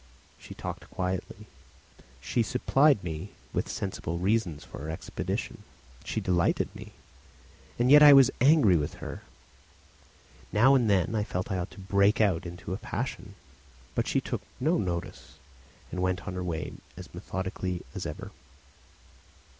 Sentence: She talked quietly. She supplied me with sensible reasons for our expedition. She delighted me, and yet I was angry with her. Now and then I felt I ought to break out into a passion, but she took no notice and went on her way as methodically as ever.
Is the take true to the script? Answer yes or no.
yes